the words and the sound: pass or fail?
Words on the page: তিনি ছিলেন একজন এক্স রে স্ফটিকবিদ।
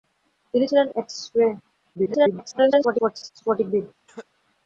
fail